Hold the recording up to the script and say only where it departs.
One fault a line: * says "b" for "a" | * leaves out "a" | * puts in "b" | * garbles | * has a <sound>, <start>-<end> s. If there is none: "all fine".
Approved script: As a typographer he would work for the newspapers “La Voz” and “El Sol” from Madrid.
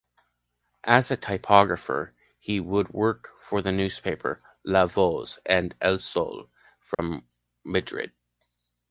* has a dropout, 6.9-7.0 s